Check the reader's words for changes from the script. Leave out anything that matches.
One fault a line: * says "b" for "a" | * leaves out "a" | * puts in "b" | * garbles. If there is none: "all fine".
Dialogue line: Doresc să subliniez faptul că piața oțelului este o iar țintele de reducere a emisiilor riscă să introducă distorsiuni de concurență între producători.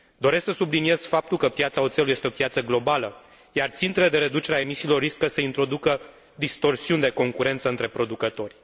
* puts in "piață globală"